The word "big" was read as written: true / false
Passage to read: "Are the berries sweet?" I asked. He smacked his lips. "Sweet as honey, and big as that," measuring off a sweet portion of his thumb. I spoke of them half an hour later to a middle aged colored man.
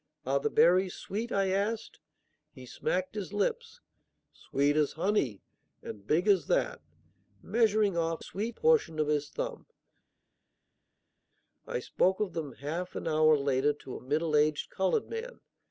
true